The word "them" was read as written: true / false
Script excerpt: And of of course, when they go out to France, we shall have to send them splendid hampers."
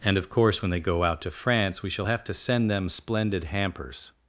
true